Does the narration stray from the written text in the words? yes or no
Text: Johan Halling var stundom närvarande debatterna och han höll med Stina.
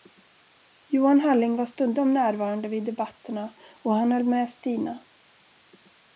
yes